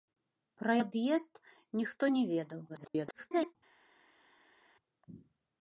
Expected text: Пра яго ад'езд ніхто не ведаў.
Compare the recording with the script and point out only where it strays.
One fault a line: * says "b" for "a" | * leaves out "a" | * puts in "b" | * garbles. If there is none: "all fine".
* leaves out "яго"
* garbles